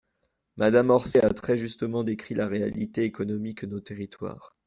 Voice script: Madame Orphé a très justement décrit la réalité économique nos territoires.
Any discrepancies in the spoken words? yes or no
no